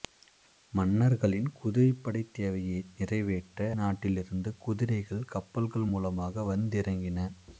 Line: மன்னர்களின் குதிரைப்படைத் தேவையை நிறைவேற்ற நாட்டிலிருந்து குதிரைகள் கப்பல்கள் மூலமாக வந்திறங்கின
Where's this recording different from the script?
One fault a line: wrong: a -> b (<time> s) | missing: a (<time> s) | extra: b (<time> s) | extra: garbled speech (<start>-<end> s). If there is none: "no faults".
no faults